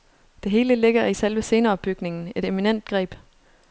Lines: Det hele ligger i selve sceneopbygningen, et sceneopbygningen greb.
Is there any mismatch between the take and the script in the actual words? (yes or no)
yes